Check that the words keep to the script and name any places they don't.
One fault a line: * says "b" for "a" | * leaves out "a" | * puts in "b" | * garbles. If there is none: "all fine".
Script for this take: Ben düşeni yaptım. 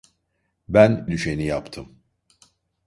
all fine